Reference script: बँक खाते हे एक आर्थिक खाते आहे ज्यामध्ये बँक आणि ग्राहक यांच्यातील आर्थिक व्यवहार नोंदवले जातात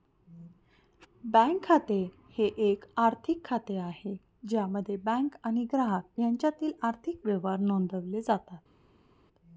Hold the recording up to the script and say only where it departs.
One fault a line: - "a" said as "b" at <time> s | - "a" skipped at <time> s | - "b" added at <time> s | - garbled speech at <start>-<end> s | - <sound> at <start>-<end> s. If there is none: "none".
none